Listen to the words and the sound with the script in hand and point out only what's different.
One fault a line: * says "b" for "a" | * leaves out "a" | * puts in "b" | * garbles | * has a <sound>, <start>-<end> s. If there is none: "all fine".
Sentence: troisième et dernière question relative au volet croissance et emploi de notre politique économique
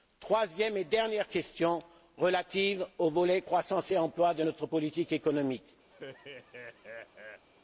* has a laugh, 5.9-7.5 s